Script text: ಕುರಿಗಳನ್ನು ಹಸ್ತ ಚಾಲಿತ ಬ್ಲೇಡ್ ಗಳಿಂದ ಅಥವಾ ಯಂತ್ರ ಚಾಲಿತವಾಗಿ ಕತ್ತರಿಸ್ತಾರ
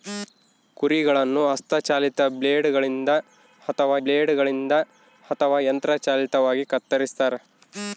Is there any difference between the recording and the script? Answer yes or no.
yes